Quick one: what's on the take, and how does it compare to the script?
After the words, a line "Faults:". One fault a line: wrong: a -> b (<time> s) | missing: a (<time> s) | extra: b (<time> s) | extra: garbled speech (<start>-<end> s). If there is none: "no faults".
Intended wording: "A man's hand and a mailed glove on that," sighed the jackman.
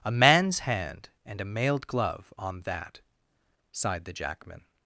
"A man's hand and a mailed glove on that," sighed the jackman.
Faults:
no faults